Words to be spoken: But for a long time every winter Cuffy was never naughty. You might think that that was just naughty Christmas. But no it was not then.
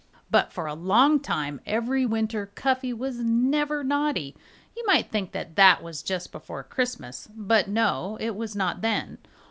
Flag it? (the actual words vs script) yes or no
yes